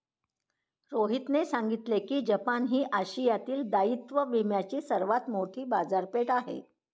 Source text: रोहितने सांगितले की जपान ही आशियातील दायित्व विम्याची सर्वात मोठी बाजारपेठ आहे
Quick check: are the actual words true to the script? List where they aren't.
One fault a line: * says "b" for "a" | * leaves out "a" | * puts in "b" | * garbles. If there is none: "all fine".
all fine